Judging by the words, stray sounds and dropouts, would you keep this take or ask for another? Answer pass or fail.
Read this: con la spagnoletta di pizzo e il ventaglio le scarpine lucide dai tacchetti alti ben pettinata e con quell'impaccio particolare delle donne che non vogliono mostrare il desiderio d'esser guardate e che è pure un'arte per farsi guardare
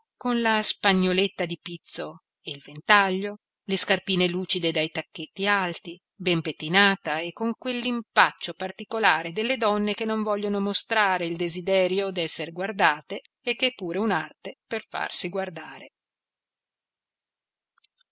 pass